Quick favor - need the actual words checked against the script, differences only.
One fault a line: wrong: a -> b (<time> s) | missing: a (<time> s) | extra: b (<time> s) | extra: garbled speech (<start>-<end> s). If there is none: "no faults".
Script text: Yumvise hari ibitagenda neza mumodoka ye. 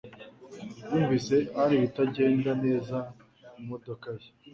no faults